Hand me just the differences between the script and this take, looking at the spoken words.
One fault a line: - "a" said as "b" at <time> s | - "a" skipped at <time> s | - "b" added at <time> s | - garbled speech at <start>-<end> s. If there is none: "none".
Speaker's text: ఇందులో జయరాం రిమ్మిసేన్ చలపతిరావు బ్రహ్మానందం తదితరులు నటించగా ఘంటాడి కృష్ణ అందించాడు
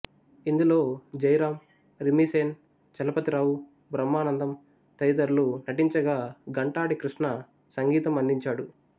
- "సంగీతం" added at 7.8 s